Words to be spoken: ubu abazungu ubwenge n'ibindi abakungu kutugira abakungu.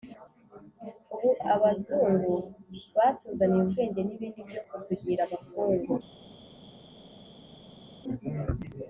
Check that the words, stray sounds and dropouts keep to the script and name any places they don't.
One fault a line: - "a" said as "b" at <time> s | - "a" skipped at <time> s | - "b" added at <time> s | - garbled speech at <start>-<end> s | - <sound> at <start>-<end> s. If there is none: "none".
- "batuzaniye" added at 3.0 s
- "abakungu" said as "byo" at 4.5 s